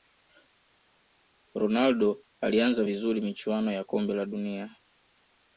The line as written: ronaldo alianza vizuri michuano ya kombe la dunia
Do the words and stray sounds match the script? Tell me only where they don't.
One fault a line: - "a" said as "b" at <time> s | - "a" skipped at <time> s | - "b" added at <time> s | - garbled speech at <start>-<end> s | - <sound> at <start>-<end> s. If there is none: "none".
none